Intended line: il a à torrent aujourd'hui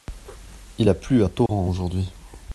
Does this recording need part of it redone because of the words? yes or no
yes